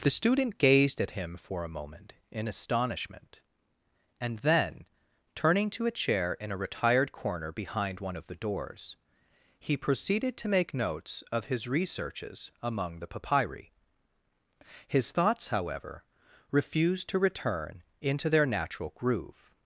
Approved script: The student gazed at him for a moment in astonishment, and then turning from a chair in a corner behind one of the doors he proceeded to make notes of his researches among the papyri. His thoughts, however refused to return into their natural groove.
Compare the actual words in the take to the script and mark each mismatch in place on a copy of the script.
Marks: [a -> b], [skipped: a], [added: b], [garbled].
The student gazed at him for a moment in astonishment, and then turning [from -> to] a chair in a [added: retired] corner behind one of the doors he proceeded to make notes of his researches among the papyri. His thoughts, however refused to return into their natural groove.